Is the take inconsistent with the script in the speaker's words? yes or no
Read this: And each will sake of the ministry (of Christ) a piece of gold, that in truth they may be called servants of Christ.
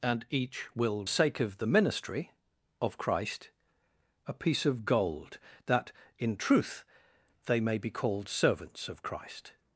no